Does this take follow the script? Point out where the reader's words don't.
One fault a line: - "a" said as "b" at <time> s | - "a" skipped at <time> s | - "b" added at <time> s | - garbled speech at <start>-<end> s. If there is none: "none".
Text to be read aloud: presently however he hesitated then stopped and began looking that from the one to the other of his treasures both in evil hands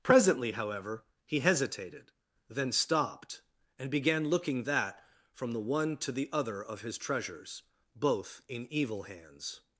none